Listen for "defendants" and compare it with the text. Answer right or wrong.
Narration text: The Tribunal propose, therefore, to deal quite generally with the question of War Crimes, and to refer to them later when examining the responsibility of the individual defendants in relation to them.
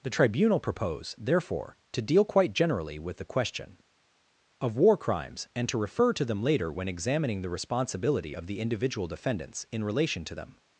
right